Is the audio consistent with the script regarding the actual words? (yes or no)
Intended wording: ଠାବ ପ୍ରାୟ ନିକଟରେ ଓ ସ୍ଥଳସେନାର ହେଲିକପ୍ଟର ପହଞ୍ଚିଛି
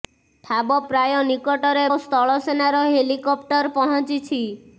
yes